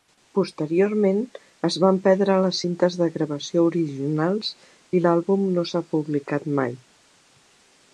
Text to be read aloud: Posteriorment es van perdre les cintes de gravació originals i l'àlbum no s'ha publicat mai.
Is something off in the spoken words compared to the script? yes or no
no